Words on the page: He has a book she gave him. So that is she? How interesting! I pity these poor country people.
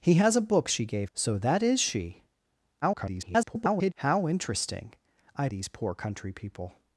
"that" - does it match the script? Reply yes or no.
yes